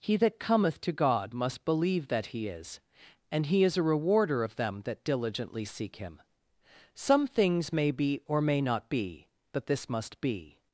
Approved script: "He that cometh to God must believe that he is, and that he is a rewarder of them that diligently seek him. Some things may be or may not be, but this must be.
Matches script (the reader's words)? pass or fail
fail